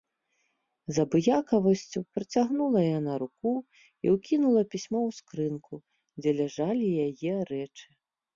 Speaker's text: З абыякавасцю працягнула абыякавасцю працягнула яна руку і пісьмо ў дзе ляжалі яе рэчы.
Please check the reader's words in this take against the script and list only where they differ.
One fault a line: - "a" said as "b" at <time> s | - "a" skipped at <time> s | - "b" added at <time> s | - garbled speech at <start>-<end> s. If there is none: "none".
- "абыякавасцю працягнула" skipped at 2.8 s
- "ўкінула" added at 4.2 s
- "скрынку" added at 5.2 s